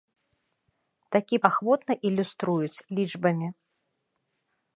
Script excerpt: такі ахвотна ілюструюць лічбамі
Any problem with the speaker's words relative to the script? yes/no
no